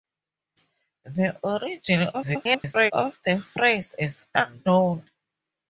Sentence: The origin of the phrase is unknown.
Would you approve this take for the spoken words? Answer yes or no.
no